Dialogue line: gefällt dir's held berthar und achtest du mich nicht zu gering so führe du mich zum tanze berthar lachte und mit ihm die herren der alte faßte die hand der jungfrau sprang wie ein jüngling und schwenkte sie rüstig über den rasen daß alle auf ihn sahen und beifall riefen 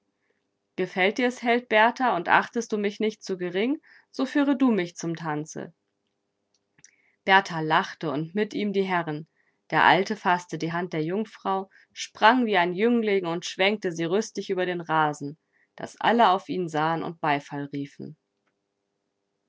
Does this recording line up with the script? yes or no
yes